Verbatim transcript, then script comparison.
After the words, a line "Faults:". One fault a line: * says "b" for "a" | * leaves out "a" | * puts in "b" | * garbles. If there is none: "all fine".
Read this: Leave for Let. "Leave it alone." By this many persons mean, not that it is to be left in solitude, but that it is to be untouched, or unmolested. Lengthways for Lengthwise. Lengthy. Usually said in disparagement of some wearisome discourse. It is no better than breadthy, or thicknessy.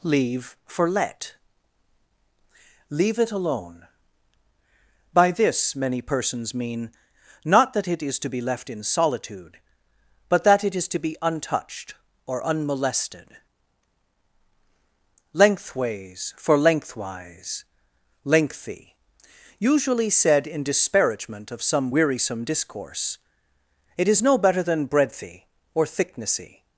Leave for Let. "Leave it alone." By this many persons mean, not that it is to be left in solitude, but that it is to be untouched, or unmolested. Lengthways for Lengthwise. Lengthy. Usually said in disparagement of some wearisome discourse. It is no better than breadthy, or thicknessy.
Faults:
all fine